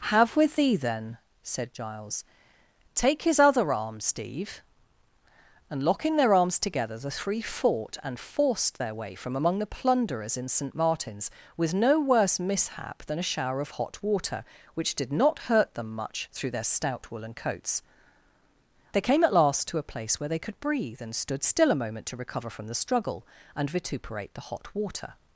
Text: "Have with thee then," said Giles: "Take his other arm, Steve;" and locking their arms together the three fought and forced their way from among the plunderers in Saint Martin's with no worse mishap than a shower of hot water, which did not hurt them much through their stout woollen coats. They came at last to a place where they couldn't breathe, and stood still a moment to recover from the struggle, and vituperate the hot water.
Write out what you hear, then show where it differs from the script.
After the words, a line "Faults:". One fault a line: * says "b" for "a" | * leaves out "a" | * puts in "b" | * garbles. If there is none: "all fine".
"Have with thee then," said Giles: "Take his other arm, Steve;" and locking their arms together the three fought and forced their way from among the plunderers in Saint Martin's with no worse mishap than a shower of hot water, which did not hurt them much through their stout woollen coats. They came at last to a place where they could breathe, and stood still a moment to recover from the struggle, and vituperate the hot water.
Faults:
* says "could" for "couldn't"